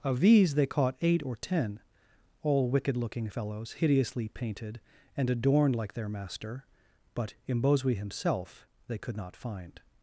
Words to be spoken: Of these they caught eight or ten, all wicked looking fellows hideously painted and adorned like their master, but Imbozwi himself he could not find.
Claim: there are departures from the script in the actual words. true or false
true